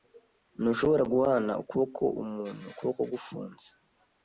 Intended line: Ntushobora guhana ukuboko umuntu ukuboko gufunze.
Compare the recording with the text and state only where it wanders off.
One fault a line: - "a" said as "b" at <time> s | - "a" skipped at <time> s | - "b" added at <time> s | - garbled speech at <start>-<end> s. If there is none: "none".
none